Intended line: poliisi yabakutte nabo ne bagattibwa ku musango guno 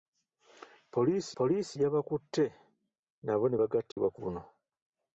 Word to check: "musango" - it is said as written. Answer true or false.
false